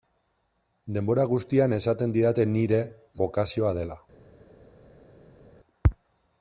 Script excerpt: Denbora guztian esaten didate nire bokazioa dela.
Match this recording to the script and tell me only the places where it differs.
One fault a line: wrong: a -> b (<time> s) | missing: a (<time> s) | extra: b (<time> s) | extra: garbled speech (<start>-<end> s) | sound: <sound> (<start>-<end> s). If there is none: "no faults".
no faults